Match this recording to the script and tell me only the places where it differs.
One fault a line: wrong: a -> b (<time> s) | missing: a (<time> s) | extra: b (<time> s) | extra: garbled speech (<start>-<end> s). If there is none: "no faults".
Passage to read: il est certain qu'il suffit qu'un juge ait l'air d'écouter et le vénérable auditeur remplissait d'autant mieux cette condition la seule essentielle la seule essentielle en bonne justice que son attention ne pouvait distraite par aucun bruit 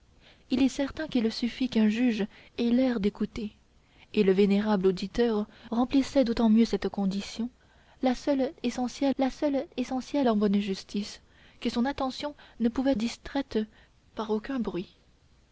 no faults